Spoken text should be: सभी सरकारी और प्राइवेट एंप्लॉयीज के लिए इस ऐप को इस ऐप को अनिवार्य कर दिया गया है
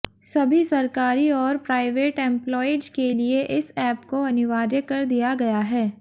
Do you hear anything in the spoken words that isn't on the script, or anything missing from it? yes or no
yes